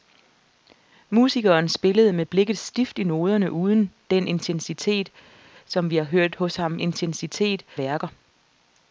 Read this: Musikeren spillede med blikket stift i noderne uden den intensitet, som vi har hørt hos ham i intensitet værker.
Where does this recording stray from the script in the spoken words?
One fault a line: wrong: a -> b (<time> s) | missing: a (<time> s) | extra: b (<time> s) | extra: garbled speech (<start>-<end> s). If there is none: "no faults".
no faults